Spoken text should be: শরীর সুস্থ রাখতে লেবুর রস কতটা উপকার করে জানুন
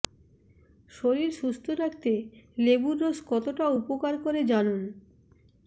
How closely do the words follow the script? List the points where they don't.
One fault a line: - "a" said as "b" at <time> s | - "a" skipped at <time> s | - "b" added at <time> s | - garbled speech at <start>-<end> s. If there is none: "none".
none